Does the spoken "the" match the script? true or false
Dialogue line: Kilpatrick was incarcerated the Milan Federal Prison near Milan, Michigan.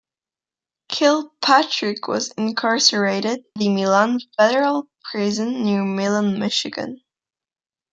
true